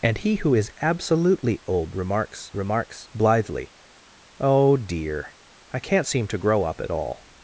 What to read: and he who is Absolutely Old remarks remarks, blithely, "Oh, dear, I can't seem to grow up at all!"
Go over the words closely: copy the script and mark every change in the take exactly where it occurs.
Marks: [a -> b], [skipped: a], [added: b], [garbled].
and he who is Absolutely Old remarks remarks, blithely, "Oh, dear, I can't seem to grow up at all!"